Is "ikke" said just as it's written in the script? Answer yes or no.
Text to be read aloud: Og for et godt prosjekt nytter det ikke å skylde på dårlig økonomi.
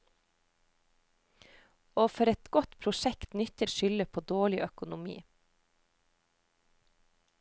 no